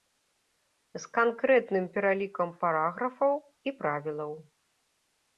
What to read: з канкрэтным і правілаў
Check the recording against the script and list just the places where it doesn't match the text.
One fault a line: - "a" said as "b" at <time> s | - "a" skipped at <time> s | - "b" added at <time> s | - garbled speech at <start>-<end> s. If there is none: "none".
- "пералікам параграфаў" added at 2.0 s